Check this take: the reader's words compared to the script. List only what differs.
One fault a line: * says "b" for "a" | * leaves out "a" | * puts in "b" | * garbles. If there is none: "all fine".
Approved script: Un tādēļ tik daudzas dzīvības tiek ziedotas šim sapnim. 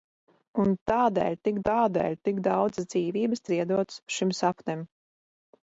* puts in "tādēļ tik"
* leaves out "tiek"